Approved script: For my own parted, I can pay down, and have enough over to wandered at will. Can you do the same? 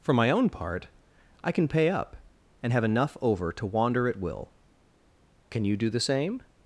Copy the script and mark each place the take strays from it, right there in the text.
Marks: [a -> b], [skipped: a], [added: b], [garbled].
For my own [parted, -> part] I can pay [down, -> up] and have enough over to [wandered -> wander] at will. Can you do the same?